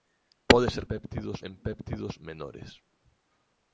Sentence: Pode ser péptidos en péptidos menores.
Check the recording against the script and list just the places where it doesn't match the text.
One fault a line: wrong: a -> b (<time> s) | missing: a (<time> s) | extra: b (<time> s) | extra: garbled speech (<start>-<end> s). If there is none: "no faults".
no faults